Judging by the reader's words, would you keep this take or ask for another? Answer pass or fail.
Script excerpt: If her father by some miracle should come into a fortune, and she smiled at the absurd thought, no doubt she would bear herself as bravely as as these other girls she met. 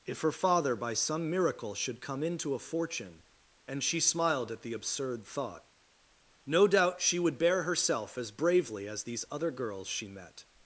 fail